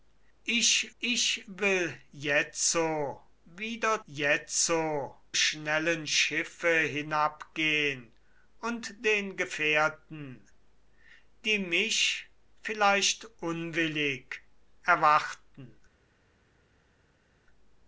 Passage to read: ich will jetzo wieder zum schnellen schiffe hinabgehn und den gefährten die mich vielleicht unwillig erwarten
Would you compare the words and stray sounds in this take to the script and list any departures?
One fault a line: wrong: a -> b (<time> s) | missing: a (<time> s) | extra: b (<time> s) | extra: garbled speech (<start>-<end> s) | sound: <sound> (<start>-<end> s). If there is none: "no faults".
extra: ich (1.0 s)
wrong: zum -> jetzo (4.1 s)